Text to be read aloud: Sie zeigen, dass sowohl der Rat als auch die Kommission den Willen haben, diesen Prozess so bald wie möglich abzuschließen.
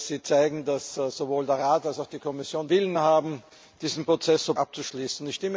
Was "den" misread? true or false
true